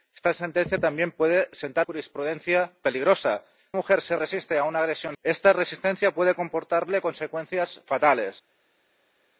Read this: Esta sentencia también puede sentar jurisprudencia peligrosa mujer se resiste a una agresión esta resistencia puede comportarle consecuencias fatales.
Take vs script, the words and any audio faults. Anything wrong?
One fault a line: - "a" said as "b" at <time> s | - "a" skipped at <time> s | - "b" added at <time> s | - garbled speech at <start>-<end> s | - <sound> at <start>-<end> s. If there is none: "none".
none